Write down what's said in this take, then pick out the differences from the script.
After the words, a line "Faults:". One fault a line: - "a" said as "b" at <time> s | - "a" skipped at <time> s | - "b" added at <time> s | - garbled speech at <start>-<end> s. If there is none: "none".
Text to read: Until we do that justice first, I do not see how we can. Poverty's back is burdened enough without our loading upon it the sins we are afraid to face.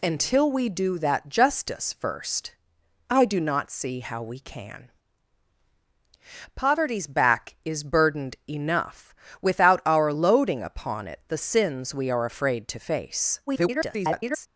Until we do that justice first, I do not see how we can. Poverty's back is burdened enough without our loading upon it the sins we are afraid to face. [garbled]
Faults:
- garbled speech at 13.5-14.5 s